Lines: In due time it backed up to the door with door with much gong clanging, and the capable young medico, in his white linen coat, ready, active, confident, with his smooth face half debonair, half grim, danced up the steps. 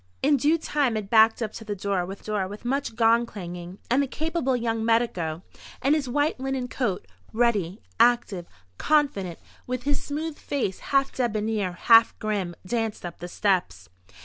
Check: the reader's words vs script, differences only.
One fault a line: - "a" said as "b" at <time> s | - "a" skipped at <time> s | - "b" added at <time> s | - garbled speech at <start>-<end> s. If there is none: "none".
none